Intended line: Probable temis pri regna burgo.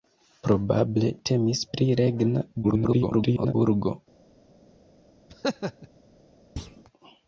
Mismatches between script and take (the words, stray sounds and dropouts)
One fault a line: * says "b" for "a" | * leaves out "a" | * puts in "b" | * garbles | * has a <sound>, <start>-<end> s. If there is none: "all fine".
* garbles
* has a laugh, 5.3-5.9 s
* has a thud, 6.6-6.8 s